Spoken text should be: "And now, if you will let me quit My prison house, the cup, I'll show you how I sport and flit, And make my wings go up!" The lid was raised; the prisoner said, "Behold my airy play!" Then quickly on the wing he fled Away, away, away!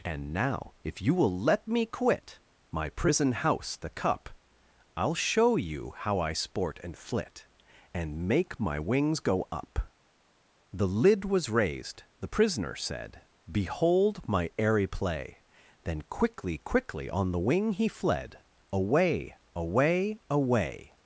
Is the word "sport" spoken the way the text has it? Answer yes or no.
yes